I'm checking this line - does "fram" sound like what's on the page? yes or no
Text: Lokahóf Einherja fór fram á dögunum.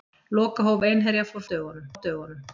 no